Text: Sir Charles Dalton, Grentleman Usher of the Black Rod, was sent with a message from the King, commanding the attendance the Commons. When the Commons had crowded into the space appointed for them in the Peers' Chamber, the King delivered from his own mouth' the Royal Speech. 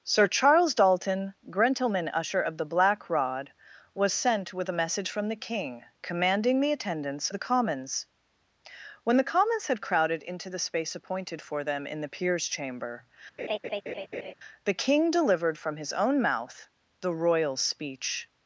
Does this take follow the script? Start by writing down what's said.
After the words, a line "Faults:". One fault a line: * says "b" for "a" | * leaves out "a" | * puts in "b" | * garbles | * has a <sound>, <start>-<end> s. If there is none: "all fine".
Sir Charles Dalton, Grentleman Usher of the Black Rod, was sent with a message from the King, commanding the attendance the Commons. When the Commons had crowded into the space appointed for them in the Peers' Chamber, the King delivered from his own mouth' the Royal Speech.
Faults:
* has a laugh, 13.4-14.3 s